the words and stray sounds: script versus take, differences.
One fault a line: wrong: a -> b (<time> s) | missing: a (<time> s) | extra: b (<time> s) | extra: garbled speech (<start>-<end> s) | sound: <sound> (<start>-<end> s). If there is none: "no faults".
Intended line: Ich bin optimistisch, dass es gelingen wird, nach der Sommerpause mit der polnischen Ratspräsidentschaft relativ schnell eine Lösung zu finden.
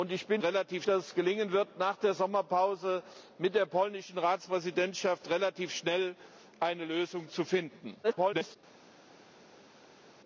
wrong: optimistisch -> relativ (0.4 s)
extra: garbled speech (8.0-8.6 s)